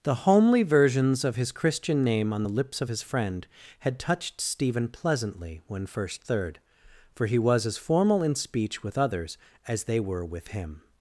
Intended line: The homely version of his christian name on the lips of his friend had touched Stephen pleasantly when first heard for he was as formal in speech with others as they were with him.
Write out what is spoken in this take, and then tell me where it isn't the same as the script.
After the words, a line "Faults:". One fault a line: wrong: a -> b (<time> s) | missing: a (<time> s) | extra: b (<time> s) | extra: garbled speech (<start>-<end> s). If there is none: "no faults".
The homely versions of his christian name on the lips of his friend had touched Stephen pleasantly when first third for he was as formal in speech with others as they were with him.
Faults:
wrong: version -> versions (0.6 s)
wrong: heard -> third (6.2 s)